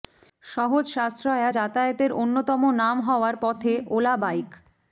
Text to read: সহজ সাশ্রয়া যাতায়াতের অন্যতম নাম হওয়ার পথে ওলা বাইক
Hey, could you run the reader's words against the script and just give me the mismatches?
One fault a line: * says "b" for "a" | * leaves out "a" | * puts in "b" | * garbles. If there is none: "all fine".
all fine